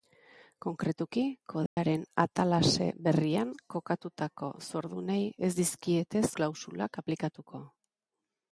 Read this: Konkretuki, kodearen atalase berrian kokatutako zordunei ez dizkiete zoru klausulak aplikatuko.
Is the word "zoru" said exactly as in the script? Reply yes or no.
no